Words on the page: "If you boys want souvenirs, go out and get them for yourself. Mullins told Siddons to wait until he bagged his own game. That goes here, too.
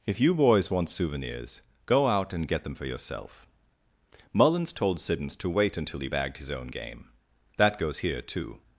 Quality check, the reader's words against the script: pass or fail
pass